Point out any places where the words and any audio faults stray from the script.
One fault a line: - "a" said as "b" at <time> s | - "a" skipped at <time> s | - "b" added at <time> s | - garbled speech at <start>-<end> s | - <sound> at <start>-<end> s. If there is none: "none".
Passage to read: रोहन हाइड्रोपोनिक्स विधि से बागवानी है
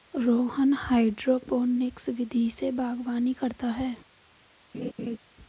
- "करता" added at 3.3 s
- laugh at 4.7-5.2 s